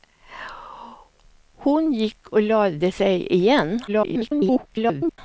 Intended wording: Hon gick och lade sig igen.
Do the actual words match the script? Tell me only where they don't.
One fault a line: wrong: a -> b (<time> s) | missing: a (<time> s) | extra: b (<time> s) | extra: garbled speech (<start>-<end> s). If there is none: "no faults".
extra: garbled speech (3.9-5.2 s)